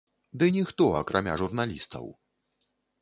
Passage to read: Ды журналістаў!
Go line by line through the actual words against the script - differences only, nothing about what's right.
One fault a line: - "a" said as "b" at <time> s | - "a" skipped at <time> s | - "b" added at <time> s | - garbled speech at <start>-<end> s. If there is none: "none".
- "ніхто акрамя" added at 0.6 s